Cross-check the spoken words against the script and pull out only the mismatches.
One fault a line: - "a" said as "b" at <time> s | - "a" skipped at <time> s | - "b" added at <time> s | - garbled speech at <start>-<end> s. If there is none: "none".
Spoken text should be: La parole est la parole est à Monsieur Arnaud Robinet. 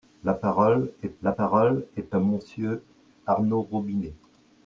none